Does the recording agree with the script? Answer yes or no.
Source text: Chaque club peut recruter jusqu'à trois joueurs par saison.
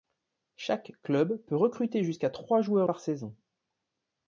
yes